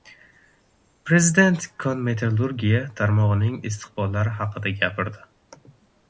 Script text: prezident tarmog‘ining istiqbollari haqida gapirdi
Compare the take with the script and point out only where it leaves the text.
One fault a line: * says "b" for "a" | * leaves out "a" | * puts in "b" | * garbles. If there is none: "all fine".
* puts in "kon metallurgiya"